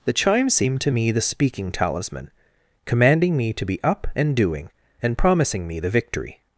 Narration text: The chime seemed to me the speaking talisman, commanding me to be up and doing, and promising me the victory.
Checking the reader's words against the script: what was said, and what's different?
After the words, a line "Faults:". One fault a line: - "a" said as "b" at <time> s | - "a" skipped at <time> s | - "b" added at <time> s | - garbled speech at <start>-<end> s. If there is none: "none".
The chime seemed to me the speaking talisman, commanding me to be up and doing, and promising me the victory.
Faults:
none